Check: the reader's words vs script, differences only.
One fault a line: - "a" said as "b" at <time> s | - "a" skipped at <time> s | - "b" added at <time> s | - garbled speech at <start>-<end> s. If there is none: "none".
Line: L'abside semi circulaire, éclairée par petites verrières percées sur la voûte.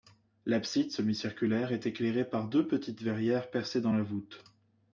- "est" added at 1.7 s
- "deux" added at 2.5 s
- "sur" said as "dans" at 3.8 s